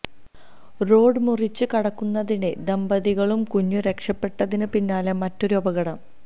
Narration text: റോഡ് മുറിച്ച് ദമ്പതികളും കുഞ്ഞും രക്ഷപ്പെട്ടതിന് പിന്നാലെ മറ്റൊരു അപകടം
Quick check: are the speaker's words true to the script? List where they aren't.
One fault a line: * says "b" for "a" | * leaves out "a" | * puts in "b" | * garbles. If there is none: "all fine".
* puts in "കടക്കുന്നതിനിടെ"